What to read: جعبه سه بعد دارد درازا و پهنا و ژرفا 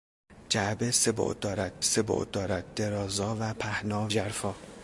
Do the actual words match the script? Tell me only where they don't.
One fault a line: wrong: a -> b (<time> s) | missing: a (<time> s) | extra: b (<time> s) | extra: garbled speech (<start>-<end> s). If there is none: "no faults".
extra: سه بعد دارد (1.8 s)
missing: و (4.1 s)